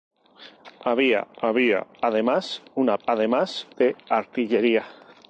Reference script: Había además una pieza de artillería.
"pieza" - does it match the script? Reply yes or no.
no